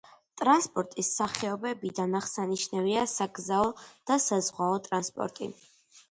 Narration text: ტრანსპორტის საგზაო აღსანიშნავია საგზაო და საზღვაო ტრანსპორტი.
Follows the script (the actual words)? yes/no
no